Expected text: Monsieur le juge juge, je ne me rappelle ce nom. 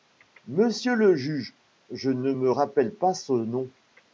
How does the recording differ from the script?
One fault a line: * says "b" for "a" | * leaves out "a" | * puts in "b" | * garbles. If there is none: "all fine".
* leaves out "juge"
* puts in "pas"